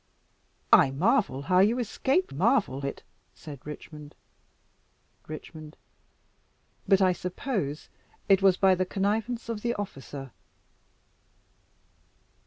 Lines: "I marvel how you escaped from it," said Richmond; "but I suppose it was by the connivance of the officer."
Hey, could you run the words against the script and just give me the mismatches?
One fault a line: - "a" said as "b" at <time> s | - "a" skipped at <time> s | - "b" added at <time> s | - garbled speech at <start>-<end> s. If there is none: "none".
- "from" said as "marvel" at 2.3 s
- "Richmond" added at 5.3 s